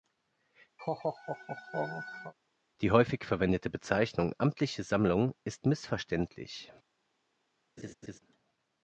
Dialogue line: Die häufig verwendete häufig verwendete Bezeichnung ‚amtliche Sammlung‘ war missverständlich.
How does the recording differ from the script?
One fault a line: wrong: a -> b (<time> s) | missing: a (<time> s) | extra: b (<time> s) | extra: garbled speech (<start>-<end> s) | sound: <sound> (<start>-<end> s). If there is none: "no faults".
sound: laugh (0.8-2.3 s)
missing: häufig verwendete (3.7 s)
wrong: war -> ist (5.4 s)
sound: laugh (7.8-8.2 s)